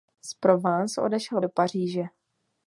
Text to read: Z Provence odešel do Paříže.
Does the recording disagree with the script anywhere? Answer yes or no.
no